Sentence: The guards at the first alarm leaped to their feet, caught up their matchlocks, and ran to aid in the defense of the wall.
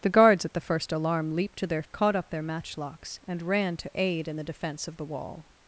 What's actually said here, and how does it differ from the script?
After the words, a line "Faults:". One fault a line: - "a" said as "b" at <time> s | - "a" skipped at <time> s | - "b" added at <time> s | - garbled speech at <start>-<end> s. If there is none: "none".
The guards at the first alarm leaped to their caught up their matchlocks, and ran to aid in the defense of the wall.
Faults:
- "feet" skipped at 1.8 s